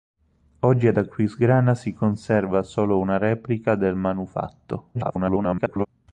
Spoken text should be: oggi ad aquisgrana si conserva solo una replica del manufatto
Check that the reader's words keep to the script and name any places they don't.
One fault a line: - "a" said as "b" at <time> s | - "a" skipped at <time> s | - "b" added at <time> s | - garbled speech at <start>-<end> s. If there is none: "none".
- garbled speech at 4.9-5.9 s